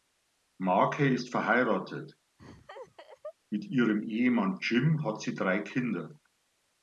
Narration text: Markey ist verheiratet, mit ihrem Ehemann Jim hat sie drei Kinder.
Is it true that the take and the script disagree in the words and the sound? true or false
true